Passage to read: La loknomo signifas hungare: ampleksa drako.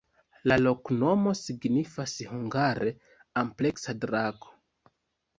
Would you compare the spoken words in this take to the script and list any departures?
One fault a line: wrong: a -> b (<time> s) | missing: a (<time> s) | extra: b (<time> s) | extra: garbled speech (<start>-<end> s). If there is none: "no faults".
no faults